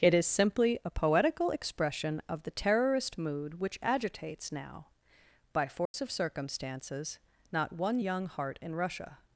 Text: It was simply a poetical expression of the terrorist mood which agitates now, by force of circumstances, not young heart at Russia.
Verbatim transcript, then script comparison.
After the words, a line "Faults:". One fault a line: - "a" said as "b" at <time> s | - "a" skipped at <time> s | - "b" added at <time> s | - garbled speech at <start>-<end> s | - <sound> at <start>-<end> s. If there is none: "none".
It is simply a poetical expression of the terrorist mood which agitates now, by force of circumstances, not one young heart in Russia.
Faults:
- "was" said as "is" at 0.1 s
- dropout at 5.9-5.9 s
- "one" added at 7.7 s
- "at" said as "in" at 8.6 s